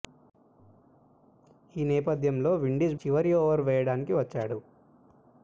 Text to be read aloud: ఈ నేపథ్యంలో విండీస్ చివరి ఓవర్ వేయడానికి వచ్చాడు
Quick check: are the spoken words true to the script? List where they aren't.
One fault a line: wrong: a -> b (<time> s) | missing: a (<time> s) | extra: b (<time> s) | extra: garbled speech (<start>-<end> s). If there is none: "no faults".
no faults